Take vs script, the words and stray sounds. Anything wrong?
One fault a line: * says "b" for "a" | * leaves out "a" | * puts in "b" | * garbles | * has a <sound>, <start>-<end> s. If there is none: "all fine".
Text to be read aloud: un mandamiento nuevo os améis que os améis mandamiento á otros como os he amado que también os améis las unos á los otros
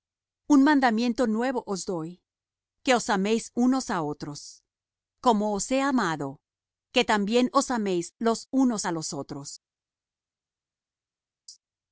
* says "doy" for "améis"
* says "unos" for "mandamiento"
* says "los" for "las"